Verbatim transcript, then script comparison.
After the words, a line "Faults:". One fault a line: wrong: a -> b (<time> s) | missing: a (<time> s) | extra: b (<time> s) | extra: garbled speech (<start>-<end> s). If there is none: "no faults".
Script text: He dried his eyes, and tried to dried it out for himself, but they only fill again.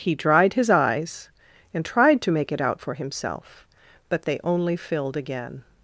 He dried his eyes, and tried to make it out for himself, but they only filled again.
Faults:
wrong: dried -> make (2.3 s)
wrong: fill -> filled (4.8 s)